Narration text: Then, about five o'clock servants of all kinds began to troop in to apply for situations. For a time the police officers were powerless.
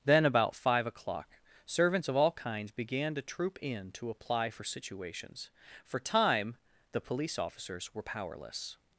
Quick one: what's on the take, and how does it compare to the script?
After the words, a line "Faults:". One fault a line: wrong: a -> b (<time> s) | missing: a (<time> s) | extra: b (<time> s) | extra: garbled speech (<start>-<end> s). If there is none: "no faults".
Then, about five o'clock servants of all kinds began to troop in to apply for situations. For time the police officers were powerless.
Faults:
missing: a (6.0 s)